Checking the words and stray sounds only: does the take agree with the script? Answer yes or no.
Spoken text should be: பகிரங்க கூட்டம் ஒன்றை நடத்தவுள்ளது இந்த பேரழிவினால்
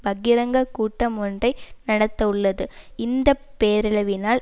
yes